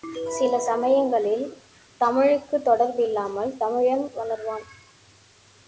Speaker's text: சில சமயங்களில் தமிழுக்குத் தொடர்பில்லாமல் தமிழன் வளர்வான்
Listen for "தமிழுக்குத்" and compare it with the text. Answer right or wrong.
right